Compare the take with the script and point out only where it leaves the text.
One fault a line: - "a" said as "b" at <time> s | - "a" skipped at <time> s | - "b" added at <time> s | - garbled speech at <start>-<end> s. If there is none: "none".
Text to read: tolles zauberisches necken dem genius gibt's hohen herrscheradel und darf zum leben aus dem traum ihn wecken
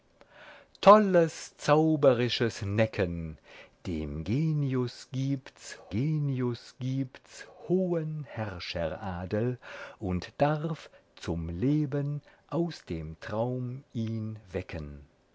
- "genius gibt's" added at 5.9 s